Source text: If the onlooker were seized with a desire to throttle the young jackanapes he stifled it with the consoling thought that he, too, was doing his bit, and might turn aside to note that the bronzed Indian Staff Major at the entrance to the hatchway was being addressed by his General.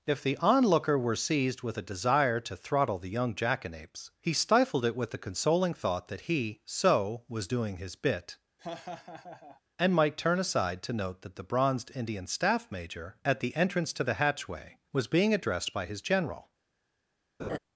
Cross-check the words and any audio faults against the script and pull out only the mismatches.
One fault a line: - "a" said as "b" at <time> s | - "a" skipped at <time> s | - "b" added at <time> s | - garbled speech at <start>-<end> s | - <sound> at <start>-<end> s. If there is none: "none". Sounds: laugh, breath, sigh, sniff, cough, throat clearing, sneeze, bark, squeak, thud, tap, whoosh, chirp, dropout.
- "too" said as "so" at 6.7 s
- laugh at 8.6-9.6 s
- laugh at 17.4-17.6 s